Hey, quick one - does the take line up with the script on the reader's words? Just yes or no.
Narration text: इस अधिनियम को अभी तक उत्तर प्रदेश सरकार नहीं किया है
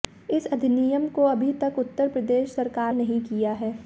yes